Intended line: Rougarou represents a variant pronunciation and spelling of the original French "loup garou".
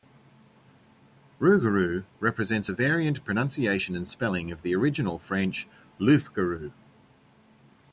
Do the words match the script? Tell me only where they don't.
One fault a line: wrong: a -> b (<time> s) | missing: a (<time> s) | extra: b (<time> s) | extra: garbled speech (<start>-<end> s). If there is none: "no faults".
no faults